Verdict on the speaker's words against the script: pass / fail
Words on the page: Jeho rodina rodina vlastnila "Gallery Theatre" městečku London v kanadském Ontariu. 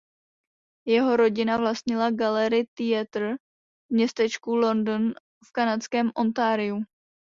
fail